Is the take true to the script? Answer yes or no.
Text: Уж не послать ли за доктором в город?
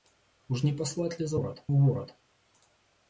no